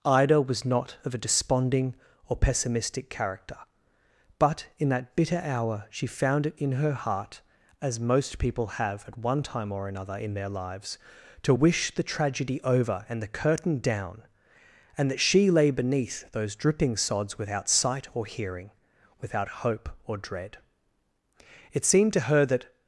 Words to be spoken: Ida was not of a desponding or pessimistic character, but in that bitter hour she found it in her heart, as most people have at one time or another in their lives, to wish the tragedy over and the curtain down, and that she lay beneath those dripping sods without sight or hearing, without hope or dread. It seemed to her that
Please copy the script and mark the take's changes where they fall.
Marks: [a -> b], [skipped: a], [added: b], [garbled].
Ida was not of a desponding or pessimistic character, but in that bitter hour she found it in her heart, as most people have at one time or another in their lives, to wish the tragedy over and the curtain down, and that she lay beneath those dripping sods without sight or hearing, without hope or dread. It seemed to her that